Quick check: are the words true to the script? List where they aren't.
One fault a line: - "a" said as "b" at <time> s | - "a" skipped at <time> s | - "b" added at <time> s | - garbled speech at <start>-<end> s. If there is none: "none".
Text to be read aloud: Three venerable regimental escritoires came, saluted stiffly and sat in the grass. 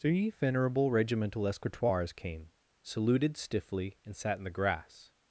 none